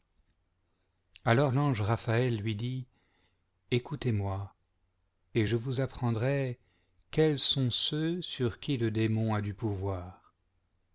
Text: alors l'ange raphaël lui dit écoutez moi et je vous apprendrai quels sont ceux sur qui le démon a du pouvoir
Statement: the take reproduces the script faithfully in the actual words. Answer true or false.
true